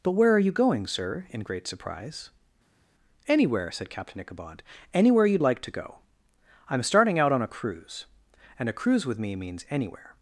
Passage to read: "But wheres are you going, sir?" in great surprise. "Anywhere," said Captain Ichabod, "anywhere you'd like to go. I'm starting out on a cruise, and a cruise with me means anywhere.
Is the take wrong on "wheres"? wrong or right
wrong